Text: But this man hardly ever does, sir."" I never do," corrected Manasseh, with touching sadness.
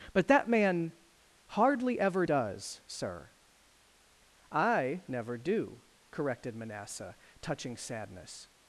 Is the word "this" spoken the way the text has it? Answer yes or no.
no